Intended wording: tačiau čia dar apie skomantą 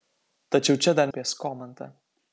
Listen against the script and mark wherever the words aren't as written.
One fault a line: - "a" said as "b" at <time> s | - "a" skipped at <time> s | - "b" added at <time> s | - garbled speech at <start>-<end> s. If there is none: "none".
none